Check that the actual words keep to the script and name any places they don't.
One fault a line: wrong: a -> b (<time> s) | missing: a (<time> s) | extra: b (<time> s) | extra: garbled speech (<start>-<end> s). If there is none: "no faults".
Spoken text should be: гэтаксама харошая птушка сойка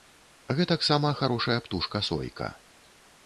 no faults